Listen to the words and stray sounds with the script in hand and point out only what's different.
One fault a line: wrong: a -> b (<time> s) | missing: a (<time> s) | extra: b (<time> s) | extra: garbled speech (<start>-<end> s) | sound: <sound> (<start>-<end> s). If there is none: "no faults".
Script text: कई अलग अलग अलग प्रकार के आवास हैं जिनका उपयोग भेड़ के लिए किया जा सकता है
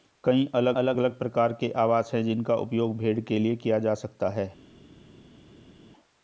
no faults